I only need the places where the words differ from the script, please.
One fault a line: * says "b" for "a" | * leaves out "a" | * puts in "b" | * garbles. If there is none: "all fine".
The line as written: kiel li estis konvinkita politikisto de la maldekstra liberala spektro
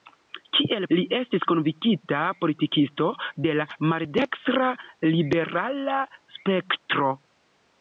all fine